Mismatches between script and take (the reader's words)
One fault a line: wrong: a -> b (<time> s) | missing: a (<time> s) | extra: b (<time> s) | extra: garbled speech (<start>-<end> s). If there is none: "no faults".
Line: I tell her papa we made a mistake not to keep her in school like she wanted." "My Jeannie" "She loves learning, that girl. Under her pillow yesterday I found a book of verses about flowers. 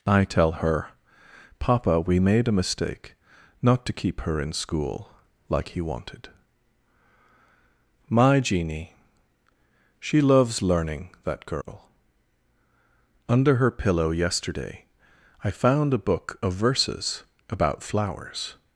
wrong: she -> he (5.7 s)